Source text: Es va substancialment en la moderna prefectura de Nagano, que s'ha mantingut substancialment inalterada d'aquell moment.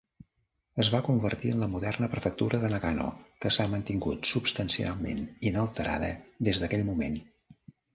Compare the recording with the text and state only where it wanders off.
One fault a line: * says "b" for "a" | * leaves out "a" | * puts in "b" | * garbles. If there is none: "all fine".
* says "convertir" for "substancialment"
* puts in "des"